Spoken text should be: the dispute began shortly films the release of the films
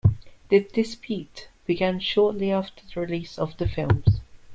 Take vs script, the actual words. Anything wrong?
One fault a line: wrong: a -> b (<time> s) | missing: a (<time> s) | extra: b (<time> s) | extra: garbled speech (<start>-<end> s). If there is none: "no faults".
wrong: films -> after (2.5 s)